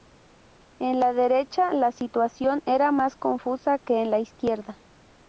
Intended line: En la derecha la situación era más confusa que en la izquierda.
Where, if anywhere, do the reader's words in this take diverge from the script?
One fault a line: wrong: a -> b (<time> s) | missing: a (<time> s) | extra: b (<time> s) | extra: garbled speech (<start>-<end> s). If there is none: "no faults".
no faults